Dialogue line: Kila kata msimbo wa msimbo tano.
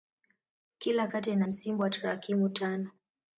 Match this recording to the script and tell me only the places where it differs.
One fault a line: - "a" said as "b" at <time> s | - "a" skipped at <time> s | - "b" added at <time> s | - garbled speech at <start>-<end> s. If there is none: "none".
- "ina" added at 1.3 s
- "msimbo" said as "tarakimu" at 1.9 s